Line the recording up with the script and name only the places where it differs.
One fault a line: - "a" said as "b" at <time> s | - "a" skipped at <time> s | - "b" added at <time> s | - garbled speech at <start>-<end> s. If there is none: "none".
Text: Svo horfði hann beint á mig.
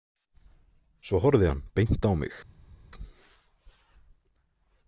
none